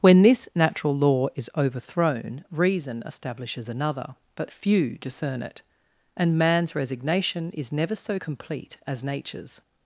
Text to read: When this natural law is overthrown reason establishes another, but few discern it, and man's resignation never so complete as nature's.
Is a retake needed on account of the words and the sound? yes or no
yes